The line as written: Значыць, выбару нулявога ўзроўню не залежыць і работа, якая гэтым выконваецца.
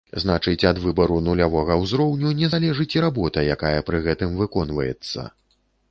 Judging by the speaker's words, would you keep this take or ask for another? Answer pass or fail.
fail